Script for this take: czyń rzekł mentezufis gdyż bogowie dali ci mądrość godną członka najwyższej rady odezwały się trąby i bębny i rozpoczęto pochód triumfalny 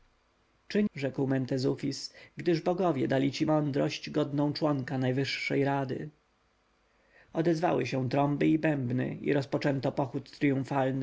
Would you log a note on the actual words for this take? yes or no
no